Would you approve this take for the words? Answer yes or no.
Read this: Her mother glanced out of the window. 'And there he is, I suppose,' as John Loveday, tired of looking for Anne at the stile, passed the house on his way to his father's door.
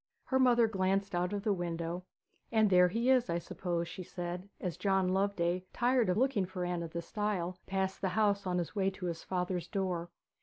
no